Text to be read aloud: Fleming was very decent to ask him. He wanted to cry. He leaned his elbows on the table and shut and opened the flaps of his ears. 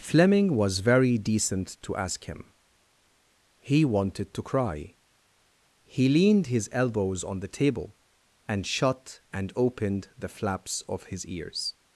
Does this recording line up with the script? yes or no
yes